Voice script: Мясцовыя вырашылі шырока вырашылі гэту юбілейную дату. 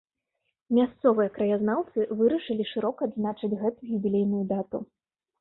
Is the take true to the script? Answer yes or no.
no